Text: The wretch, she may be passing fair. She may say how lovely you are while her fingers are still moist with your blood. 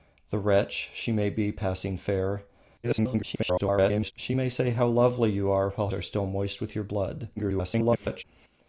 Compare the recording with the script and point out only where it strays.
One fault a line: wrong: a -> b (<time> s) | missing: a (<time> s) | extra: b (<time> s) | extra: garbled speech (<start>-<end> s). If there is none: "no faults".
extra: garbled speech (2.8-4.1 s)
missing: her fingers (5.9 s)
extra: garbled speech (7.4-8.2 s)